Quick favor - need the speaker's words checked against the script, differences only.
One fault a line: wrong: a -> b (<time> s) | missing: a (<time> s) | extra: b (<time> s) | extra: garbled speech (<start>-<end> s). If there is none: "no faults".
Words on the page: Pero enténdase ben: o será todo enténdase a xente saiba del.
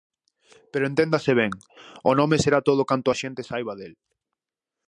extra: nome (2.2 s)
wrong: enténdase -> canto (2.9 s)